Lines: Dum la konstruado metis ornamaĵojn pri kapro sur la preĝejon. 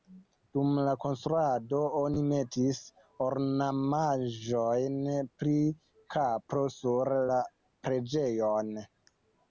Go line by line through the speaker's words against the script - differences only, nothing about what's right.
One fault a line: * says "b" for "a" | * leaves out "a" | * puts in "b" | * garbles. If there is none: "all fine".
* puts in "oni"